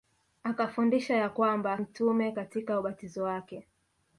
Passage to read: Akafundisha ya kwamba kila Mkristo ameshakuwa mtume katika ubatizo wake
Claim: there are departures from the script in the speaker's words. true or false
true